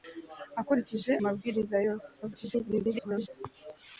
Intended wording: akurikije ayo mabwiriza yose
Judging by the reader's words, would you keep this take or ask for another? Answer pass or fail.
fail